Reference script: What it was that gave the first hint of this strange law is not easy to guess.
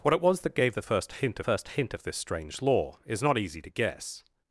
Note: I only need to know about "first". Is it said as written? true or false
true